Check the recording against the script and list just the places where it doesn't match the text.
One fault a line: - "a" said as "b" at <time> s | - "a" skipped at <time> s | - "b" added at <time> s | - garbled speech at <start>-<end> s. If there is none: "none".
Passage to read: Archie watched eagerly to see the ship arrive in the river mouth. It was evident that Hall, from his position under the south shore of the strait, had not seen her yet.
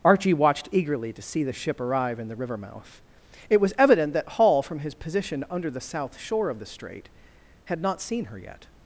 none